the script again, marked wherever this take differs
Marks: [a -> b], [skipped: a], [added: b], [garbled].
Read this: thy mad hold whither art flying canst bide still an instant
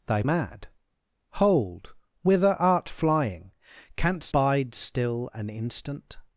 thy mad hold whither art flying canst bide still an instant